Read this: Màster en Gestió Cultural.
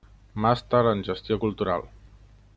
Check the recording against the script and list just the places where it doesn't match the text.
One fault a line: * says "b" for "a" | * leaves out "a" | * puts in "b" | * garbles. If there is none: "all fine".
all fine